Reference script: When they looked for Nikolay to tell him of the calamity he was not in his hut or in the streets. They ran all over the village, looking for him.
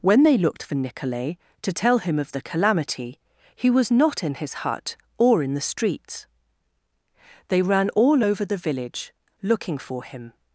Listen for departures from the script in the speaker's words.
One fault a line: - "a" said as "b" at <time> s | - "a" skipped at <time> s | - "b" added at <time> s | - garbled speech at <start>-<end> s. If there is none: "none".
none